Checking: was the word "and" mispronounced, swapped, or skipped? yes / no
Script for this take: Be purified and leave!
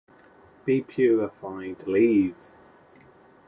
yes